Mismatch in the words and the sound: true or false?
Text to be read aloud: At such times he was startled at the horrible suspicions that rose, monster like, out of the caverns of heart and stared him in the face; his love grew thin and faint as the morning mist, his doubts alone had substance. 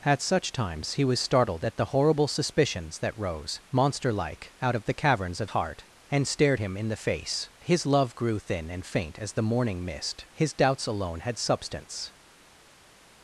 false